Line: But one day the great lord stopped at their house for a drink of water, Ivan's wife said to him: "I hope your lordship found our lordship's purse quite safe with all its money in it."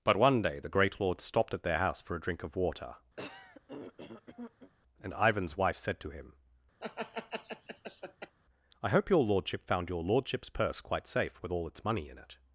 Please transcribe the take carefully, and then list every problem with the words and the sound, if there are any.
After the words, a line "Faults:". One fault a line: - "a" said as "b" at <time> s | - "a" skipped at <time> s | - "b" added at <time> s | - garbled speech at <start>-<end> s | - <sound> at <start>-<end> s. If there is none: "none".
But one day the great lord stopped at their house for a drink of water, and Ivan's wife said to him: "I hope your lordship found your lordship's purse quite safe with all its money in it."
Faults:
- throat clearing at 3.2-4.7 s
- "and" added at 5.0 s
- laugh at 6.8-8.4 s
- "our" said as "your" at 9.9 s